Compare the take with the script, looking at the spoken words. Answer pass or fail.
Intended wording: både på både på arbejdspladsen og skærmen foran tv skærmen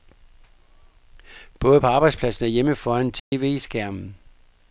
fail